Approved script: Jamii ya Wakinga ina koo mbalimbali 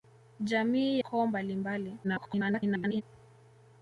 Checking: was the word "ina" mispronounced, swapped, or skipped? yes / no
yes